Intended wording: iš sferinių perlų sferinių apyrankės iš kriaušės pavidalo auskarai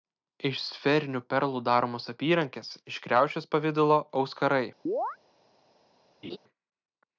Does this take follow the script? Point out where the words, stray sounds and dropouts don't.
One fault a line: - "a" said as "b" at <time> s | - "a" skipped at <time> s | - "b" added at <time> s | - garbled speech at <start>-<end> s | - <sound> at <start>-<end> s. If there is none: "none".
- "sferinių" said as "daromos" at 1.7 s
- chirp at 4.9-5.2 s
- laugh at 6.2-6.4 s